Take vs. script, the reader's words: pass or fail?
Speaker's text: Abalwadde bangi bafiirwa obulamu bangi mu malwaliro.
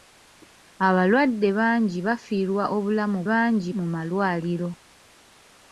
pass